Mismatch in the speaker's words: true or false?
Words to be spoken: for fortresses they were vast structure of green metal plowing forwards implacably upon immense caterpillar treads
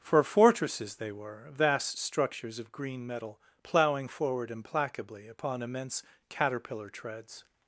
true